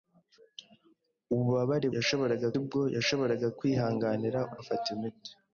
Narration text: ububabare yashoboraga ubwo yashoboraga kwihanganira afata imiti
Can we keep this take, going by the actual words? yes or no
yes